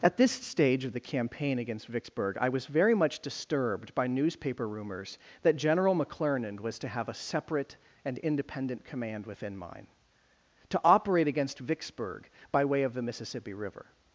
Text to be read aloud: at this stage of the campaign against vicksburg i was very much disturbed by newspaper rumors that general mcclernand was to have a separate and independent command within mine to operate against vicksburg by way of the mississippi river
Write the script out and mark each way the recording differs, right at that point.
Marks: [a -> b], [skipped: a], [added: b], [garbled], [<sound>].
at this stage of the campaign against vicksburg i was very much disturbed by newspaper rumors that general mcclernand was to have a separate and independent command within mine to operate against vicksburg by way of the mississippi river